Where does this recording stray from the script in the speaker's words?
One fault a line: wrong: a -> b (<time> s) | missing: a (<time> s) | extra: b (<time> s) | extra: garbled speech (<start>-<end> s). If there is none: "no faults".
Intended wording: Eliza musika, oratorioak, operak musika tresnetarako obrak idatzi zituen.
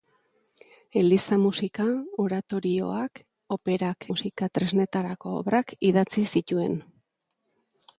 no faults